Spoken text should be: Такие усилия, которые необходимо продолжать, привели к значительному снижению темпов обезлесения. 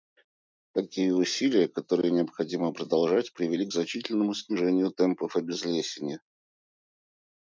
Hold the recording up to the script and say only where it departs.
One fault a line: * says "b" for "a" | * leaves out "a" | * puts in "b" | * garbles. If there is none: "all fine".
all fine